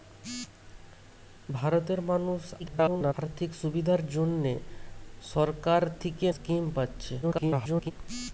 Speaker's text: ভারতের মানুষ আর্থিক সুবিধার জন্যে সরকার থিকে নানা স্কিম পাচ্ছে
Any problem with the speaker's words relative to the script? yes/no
yes